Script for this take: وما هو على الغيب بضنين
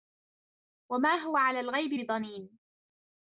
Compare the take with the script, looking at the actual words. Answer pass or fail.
pass